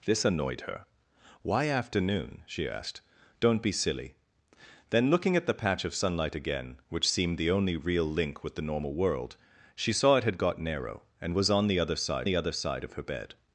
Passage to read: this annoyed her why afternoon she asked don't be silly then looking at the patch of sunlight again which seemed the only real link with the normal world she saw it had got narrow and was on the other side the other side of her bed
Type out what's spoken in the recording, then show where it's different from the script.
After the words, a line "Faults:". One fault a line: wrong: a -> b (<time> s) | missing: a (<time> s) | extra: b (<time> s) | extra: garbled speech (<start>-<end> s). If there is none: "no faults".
this annoyed her why afternoon she asked don't be silly then looking at the patch of sunlight again which seemed the only real link with the normal world she saw it had got narrow and was on the other side the other side of her bed
Faults:
no faults